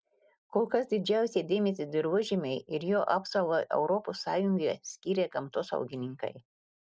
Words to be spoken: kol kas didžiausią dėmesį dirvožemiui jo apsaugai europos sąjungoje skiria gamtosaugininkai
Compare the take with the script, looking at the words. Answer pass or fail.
fail